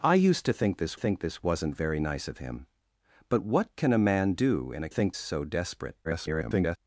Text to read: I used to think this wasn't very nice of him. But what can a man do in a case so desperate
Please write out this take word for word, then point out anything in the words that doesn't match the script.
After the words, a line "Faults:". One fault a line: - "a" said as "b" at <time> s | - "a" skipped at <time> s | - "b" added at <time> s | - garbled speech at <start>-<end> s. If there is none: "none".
I used to think this think this wasn't very nice of him. But what can a man do in a think so desperate [garbled]
Faults:
- "think this" added at 1.0 s
- "case" said as "think" at 4.9 s
- garbled speech at 6.0-6.8 s